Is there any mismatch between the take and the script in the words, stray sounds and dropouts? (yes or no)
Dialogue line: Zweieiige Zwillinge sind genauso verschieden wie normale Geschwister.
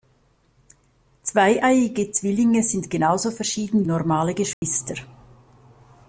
yes